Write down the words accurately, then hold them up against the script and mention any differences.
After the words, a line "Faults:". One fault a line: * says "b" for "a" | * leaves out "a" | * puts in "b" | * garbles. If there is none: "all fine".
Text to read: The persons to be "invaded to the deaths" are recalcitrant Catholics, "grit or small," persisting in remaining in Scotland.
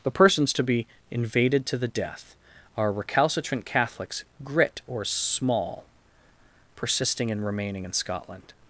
The persons to be "invaded to the death" are recalcitrant Catholics, "grit or small," persisting in remaining in Scotland.
Faults:
* says "death" for "deaths"